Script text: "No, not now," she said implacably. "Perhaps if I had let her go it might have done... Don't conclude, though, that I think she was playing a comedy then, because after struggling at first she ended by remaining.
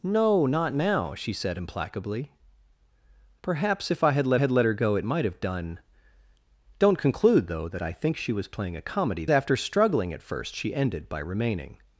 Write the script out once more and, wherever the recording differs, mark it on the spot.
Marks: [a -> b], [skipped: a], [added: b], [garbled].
"No, not now," she said implacably. "Perhaps if I had let [added: had let] her go it might have done... Don't conclude, though, that I think she was playing a comedy [skipped: then, because] after struggling at first she ended by remaining.